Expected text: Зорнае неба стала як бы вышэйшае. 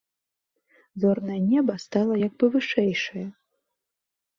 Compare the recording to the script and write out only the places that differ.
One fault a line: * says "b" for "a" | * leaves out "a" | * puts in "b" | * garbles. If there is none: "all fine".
all fine